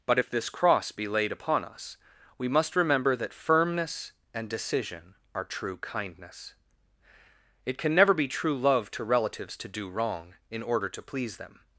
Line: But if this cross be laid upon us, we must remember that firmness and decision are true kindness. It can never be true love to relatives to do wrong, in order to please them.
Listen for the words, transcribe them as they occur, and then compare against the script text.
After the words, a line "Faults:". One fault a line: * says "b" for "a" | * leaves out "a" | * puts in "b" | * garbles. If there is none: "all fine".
But if this cross be laid upon us, we must remember that firmness and decision are true kindness. It can never be true love to relatives to do wrong, in order to please them.
Faults:
all fine